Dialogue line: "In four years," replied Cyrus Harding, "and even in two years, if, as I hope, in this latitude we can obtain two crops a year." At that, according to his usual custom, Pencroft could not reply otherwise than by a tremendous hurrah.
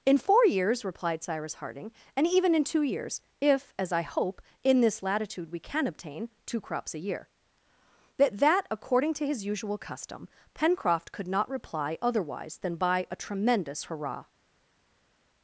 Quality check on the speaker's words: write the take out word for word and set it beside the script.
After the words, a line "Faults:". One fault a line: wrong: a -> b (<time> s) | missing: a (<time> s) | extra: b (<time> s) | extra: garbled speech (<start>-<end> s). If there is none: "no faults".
"In four years," replied Cyrus Harding, "and even in two years, if, as I hope, in this latitude we can obtain two crops a year." That that, according to his usual custom, Pencroft could not reply otherwise than by a tremendous hurrah.
Faults:
wrong: At -> That (8.2 s)